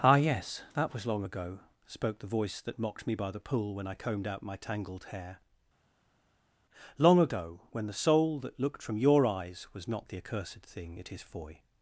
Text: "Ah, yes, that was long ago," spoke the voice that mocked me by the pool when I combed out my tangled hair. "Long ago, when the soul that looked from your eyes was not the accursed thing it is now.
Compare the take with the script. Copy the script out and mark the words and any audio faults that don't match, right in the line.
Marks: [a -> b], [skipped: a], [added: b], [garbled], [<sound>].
"Ah, yes, that was long ago," spoke the voice that mocked me by the pool when I combed out my tangled hair. "Long ago, when the soul that looked from your eyes was not the accursed thing it is [now. -> foy]